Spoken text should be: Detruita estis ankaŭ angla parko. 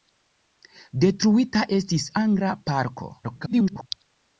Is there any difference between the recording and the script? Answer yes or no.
yes